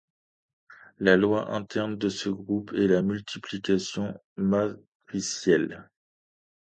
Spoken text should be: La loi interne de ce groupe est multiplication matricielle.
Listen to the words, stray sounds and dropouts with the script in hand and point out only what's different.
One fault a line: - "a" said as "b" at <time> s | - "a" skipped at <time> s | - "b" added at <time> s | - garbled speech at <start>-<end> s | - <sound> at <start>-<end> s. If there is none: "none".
- "la" added at 2.9 s